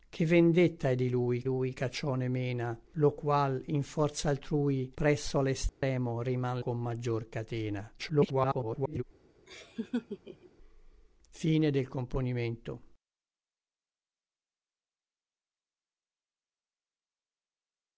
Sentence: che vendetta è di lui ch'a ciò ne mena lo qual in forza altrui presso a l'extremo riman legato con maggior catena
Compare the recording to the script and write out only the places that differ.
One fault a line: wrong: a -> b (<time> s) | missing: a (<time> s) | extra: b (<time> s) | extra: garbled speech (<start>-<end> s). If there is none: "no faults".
extra: lui (1.4 s)
missing: legato (6.6 s)
extra: garbled speech (8.0-9.0 s)